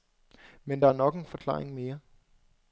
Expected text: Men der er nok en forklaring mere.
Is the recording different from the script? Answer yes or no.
no